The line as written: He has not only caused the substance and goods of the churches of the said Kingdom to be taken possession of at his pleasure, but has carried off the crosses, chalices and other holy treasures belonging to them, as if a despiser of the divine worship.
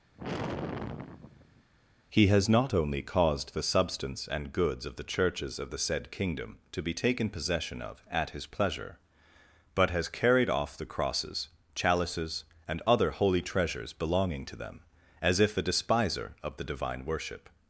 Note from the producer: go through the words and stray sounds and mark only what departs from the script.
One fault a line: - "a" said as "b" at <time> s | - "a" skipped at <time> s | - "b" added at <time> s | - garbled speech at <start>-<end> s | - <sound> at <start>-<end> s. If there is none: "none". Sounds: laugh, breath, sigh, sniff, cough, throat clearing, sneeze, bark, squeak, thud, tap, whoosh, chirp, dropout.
- sigh at 0.2-1.7 s